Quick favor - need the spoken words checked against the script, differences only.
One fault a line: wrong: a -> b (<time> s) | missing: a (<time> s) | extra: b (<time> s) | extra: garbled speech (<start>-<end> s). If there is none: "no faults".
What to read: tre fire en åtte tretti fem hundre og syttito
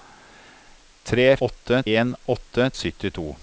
wrong: fire -> åtte (1.5 s)
missing: tretti fem hundre (2.7 s)